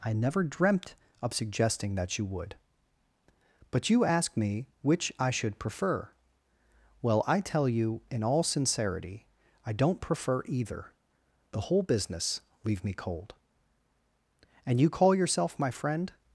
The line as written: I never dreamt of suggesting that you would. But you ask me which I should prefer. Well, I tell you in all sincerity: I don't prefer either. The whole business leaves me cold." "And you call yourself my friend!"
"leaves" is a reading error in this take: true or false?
true